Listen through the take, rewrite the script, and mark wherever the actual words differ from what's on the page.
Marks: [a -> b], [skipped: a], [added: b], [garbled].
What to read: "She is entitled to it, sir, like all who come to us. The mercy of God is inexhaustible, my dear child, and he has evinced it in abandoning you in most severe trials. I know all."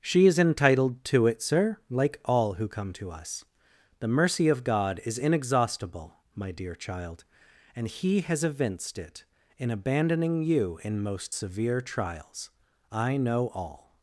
"She is entitled to it, sir, like all who come to us. The mercy of God is inexhaustible, my dear child, and he has evinced it in abandoning you in most severe trials. I know all."